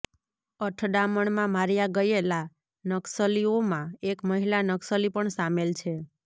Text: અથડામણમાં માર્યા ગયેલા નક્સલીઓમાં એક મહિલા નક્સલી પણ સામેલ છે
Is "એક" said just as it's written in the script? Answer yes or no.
yes